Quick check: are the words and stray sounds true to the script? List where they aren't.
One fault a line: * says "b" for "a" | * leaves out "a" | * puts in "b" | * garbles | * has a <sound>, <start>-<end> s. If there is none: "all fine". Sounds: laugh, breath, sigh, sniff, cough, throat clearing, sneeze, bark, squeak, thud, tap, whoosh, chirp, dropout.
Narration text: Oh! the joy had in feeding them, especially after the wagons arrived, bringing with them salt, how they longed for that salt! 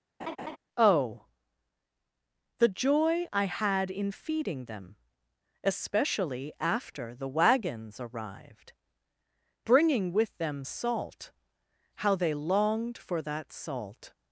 * has a laugh, 0.2-0.6 s
* puts in "I"